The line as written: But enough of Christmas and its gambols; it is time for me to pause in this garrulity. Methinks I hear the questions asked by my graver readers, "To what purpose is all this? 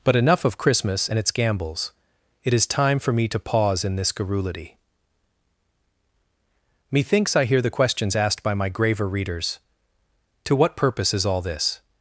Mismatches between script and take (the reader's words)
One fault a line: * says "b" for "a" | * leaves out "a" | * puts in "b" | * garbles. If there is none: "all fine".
all fine